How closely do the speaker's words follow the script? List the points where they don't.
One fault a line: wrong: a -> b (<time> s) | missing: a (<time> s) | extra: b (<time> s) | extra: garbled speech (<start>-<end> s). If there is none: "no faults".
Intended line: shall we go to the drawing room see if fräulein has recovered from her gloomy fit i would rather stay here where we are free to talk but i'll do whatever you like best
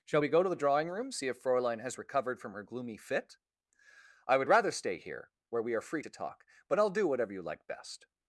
no faults